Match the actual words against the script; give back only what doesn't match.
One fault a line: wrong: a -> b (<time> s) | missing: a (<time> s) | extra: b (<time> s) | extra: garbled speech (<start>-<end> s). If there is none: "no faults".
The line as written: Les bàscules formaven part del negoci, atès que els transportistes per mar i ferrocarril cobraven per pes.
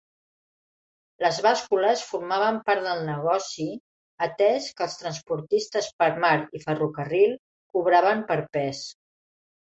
no faults